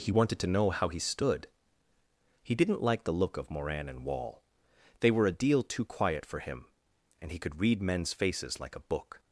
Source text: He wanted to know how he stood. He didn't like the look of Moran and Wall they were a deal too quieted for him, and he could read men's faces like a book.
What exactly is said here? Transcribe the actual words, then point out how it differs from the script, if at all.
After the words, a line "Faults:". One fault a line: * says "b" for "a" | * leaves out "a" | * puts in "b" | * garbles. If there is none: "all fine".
He wanted to know how he stood. He didn't like the look of Moran and Wall they were a deal too quiet for him, and he could read men's faces like a book.
Faults:
* says "quiet" for "quieted"